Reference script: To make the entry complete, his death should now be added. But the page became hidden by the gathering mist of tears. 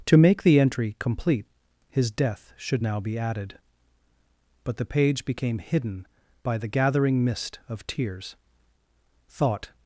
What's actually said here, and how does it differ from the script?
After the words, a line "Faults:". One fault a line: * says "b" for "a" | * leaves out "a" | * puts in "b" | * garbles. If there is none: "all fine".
To make the entry complete, his death should now be added. But the page became hidden by the gathering mist of tears. Thought
Faults:
* puts in "Thought"